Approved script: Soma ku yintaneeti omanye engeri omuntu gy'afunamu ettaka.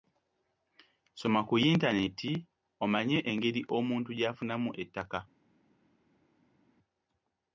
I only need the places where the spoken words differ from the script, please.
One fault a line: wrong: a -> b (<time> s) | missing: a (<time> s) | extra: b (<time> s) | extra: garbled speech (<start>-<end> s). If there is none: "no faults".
no faults